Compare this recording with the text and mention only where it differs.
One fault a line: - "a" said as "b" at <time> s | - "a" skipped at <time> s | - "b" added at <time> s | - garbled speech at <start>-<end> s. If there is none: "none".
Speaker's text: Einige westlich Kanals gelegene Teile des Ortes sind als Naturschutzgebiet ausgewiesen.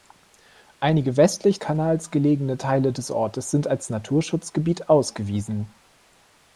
none